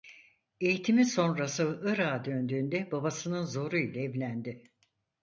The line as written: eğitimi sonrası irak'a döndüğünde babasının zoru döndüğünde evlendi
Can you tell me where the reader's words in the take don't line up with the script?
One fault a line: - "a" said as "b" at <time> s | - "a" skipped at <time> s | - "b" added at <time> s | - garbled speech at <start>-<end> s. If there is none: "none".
- "döndüğünde" said as "ile" at 3.8 s